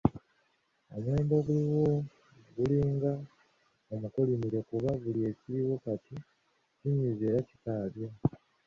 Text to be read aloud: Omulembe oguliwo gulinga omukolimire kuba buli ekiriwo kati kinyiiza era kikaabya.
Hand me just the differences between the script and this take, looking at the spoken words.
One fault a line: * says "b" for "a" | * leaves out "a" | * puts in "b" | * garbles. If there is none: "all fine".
all fine